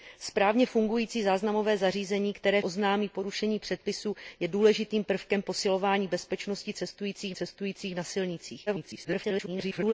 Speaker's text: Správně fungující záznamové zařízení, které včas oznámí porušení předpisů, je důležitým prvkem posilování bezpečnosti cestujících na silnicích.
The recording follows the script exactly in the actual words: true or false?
false